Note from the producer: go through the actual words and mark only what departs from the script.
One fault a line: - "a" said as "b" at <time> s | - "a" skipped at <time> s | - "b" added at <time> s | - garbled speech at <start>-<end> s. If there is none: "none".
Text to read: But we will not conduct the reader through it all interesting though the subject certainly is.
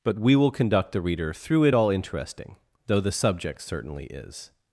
- "not" skipped at 0.5 s